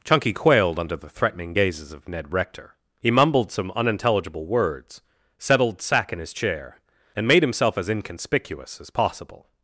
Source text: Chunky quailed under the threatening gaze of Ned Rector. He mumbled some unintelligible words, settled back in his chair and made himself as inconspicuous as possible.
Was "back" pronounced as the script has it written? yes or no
no